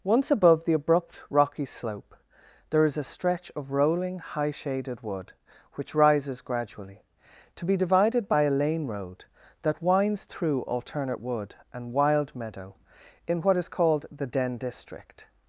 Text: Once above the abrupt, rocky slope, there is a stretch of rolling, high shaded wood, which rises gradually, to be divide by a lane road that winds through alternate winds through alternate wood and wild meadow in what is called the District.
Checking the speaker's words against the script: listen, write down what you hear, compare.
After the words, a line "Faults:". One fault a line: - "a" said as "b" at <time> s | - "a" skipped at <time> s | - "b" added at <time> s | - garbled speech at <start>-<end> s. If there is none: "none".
Once above the abrupt, rocky slope, there is a stretch of rolling, high shaded wood, which rises gradually, to be divided by a lane road that winds through alternate wood and wild meadow in what is called the Den District.
Faults:
- "divide" said as "divided" at 7.8 s
- "winds through alternate" skipped at 11.2 s
- "Den" added at 14.3 s